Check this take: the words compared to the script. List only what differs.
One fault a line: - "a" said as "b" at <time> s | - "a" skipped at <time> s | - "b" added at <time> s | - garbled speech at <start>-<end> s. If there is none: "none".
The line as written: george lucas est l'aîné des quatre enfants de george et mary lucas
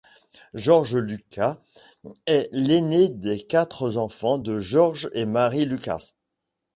none